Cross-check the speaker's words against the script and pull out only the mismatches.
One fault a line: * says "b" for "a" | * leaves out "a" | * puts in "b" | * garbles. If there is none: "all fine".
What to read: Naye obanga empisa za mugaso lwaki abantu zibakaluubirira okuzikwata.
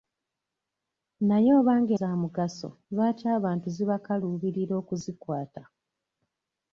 * leaves out "empisa"